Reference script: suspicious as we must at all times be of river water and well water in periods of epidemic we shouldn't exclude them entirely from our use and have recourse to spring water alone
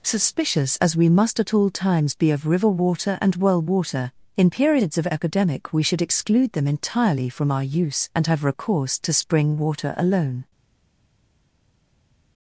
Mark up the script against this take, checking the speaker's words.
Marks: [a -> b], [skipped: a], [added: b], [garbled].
suspicious as we must at all times be of river water and well water in periods of epidemic we [shouldn't -> should] exclude them entirely from our use and have recourse to spring water alone